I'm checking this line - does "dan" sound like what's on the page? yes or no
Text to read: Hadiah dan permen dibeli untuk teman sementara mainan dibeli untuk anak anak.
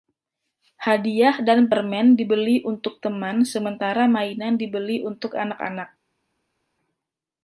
yes